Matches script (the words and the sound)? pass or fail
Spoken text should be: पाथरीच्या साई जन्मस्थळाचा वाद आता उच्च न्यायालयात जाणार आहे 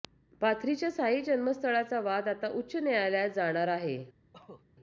fail